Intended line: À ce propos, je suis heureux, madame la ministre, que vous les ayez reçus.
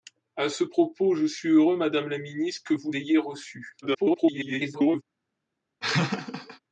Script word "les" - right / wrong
wrong